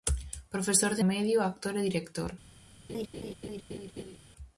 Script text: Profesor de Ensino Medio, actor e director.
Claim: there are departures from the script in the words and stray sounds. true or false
true